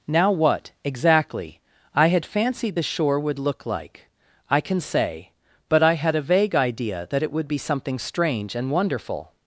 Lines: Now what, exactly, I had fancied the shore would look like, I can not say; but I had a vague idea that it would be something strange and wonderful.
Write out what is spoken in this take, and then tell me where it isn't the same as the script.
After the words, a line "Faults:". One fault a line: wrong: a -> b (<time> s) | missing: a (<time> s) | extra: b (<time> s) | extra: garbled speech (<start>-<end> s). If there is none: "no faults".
Now what, exactly, I had fancied the shore would look like, I can say; but I had a vague idea that it would be something strange and wonderful.
Faults:
missing: not (4.8 s)